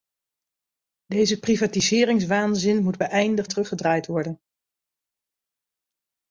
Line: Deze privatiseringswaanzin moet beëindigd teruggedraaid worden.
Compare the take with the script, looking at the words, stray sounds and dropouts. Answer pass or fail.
pass